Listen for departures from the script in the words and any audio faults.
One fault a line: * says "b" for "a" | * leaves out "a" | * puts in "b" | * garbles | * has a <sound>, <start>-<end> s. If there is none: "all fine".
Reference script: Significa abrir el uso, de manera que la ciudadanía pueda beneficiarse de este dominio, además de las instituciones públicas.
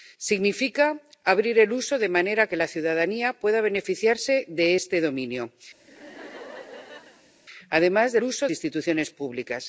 * has a laugh, 5.8-7.3 s
* says "uso" for "las"